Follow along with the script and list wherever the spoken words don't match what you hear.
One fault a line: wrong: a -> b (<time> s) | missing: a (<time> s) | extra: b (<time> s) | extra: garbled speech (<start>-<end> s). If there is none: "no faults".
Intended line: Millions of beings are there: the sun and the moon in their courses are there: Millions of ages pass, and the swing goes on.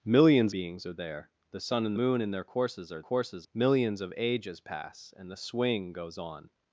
missing: of (0.6 s)
missing: the (1.9 s)
wrong: there -> courses (3.0 s)